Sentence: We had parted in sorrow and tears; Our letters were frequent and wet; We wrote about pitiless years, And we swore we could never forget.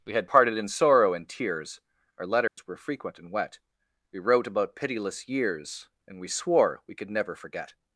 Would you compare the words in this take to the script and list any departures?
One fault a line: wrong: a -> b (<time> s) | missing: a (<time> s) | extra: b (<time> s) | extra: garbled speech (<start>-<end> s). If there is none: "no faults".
no faults